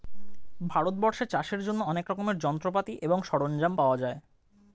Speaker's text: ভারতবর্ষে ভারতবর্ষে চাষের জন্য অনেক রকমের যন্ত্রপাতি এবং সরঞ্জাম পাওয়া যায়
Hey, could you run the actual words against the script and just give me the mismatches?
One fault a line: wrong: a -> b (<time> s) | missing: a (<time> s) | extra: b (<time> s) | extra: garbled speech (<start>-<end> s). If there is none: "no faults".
missing: ভারতবর্ষে (1.2 s)